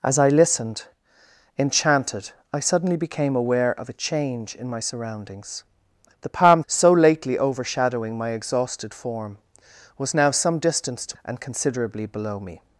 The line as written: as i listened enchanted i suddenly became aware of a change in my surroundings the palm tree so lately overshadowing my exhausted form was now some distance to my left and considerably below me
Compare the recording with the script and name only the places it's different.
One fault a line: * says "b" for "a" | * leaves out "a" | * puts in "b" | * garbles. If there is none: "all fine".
* leaves out "tree"
* leaves out "my left"